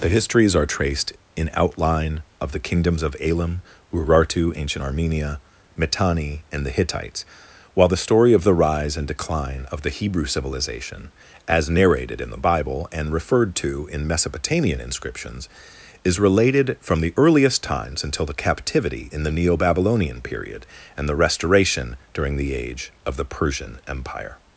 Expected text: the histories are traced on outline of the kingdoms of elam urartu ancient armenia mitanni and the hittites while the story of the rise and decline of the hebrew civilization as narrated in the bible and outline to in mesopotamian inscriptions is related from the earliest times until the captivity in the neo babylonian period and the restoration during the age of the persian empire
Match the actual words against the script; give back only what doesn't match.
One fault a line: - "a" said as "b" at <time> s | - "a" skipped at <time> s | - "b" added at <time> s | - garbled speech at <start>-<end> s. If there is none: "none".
- "on" said as "in" at 1.4 s
- "outline" said as "referred" at 13.1 s